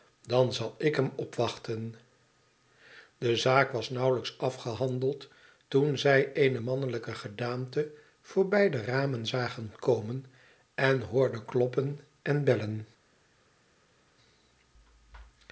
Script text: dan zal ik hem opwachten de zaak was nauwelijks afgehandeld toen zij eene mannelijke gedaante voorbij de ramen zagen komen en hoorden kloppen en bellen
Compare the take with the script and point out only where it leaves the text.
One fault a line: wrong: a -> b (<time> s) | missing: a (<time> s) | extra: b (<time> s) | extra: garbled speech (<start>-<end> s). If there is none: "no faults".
no faults